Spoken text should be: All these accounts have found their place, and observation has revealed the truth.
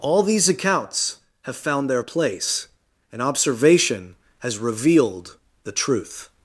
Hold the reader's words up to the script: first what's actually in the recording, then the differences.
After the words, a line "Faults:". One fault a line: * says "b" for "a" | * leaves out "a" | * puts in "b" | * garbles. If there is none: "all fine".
All these accounts have found their place, and observation has revealed the truth.
Faults:
all fine